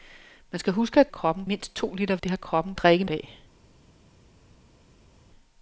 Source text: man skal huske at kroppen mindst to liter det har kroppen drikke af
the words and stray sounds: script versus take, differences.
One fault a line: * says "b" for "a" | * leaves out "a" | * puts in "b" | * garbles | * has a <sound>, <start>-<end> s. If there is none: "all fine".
all fine